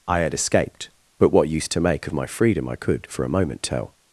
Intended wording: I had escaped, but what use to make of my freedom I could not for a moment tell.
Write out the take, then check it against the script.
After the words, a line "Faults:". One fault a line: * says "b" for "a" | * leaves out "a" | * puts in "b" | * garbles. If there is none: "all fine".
I had escaped, but what use to make of my freedom I could for a moment tell.
Faults:
* leaves out "not"